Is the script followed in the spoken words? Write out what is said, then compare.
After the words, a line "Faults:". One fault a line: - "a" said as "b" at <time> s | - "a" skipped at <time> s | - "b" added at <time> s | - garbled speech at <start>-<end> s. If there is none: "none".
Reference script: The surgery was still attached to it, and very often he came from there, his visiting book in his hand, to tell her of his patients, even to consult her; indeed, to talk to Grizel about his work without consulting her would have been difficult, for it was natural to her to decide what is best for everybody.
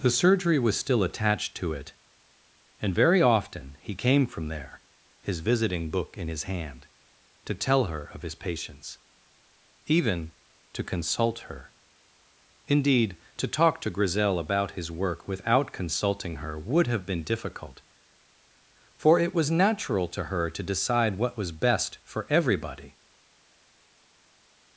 The surgery was still attached to it, and very often he came from there, his visiting book in his hand, to tell her of his patients, even to consult her; indeed, to talk to Grizel about his work without consulting her would have been difficult, for it was natural to her to decide what was best for everybody.
Faults:
- "is" said as "was" at 21.4 s